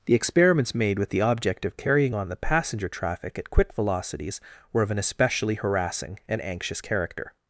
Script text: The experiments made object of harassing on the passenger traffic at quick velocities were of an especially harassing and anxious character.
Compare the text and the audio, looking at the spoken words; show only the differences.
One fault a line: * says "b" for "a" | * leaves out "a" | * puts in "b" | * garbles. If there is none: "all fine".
* puts in "with the"
* says "carrying" for "harassing"